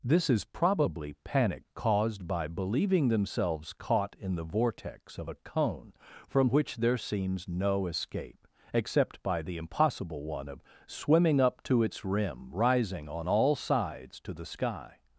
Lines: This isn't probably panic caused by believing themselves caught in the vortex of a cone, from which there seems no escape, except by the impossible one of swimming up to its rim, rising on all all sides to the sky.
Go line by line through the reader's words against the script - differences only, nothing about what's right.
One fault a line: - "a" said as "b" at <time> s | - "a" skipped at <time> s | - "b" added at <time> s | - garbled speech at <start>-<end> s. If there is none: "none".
- "isn't" said as "is" at 0.3 s
- "all" skipped at 13.6 s